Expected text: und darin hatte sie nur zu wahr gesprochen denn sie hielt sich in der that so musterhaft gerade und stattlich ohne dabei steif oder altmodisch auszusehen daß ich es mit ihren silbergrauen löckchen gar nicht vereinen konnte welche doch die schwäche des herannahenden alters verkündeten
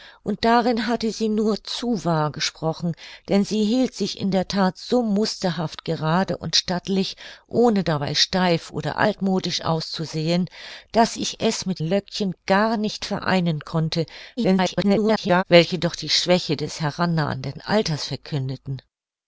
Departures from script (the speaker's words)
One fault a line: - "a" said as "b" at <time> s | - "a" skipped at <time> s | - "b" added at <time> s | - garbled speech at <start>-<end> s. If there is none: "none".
- "ihren silbergrauen" skipped at 11.8 s
- garbled speech at 14.4-15.4 s